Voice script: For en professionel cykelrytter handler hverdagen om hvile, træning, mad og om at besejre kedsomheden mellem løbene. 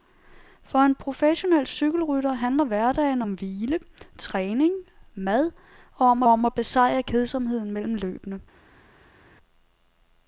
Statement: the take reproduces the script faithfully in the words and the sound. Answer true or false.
false